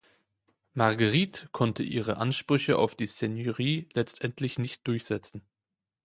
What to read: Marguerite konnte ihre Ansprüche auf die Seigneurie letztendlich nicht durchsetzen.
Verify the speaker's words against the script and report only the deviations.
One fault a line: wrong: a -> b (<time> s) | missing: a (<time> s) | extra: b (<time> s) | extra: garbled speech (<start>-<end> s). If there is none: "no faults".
no faults